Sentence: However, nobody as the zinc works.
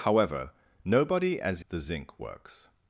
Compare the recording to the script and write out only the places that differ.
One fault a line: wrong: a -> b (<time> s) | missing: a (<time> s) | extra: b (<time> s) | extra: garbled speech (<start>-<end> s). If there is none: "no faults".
no faults